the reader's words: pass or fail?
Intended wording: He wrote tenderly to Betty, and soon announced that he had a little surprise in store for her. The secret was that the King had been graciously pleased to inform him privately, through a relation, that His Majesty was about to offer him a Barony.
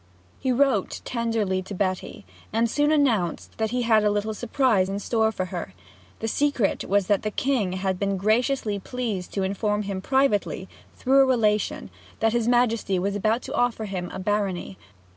pass